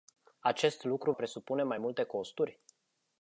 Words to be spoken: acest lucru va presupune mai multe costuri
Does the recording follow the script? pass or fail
fail